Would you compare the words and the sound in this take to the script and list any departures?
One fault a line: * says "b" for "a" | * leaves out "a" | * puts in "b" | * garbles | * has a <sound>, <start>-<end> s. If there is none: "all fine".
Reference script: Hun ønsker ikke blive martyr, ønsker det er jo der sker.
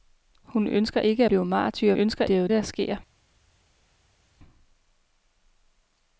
all fine